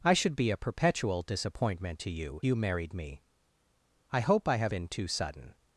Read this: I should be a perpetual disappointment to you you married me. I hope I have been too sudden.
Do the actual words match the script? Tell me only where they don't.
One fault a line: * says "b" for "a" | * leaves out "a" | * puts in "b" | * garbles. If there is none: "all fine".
all fine